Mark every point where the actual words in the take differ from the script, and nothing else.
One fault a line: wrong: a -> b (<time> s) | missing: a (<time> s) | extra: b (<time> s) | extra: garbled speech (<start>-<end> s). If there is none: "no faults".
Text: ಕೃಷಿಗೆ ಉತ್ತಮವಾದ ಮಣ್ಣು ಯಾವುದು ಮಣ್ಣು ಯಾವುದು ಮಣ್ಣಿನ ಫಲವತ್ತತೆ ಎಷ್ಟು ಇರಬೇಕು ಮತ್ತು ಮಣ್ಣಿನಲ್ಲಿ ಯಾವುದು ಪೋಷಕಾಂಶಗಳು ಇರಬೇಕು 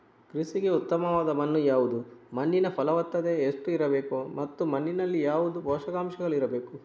missing: ಮಣ್ಣು ಯಾವುದು (2.0 s)